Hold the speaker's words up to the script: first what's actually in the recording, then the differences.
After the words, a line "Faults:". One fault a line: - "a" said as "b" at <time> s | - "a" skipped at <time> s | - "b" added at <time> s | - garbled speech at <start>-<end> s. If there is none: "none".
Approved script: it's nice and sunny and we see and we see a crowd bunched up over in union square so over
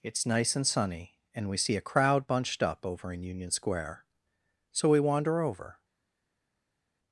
it's nice and sunny and we see a crowd bunched up over in union square so we wander over
Faults:
- "and we see" skipped at 1.8 s
- "we wander" added at 4.9 s